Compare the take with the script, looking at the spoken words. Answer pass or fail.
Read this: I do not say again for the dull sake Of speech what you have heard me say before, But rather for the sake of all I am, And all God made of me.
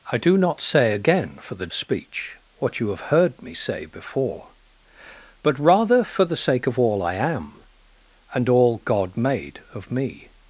fail